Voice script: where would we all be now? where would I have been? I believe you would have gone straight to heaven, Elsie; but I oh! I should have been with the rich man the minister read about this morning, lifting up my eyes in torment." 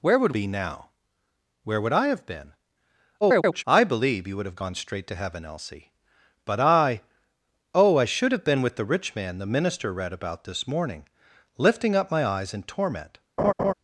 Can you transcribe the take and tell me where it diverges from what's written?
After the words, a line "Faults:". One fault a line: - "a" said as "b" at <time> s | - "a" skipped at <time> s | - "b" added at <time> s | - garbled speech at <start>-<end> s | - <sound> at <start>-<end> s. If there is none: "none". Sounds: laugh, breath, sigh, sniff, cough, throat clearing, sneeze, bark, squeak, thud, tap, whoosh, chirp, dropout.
where would be now? where would I have been? [garbled] I believe you would have gone straight to heaven, Elsie; but I oh! I should have been with the rich man the minister read about this morning, lifting up my eyes in torment."
Faults:
- "we all" skipped at 0.3 s
- garbled speech at 3.2-3.6 s
- laugh at 13.4-13.7 s